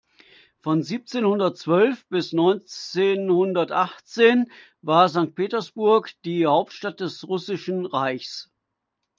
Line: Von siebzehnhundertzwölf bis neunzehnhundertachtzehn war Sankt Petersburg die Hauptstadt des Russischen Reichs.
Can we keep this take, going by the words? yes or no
yes